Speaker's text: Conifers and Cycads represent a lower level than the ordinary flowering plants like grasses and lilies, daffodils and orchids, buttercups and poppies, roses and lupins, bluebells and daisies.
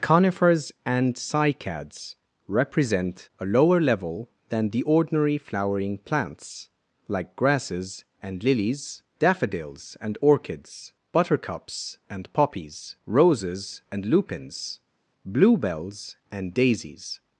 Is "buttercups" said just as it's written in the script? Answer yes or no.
yes